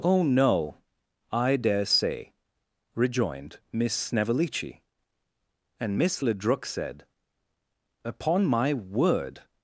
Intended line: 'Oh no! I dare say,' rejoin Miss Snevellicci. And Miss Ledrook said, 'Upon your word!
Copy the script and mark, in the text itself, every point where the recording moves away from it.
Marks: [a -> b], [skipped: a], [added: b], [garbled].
'Oh no! I dare say,' [rejoin -> rejoined] Miss Snevellicci. And Miss Ledrook said, 'Upon [your -> my] word!